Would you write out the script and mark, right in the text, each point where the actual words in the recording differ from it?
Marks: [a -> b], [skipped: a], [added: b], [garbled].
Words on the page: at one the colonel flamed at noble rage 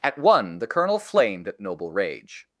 at one the colonel flamed at noble rage